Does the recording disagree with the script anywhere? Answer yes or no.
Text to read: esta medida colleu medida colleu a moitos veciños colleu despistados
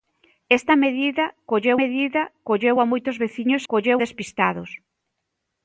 no